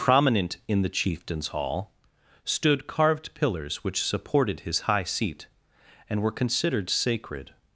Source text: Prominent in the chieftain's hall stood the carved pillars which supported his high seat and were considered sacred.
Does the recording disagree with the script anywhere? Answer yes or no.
yes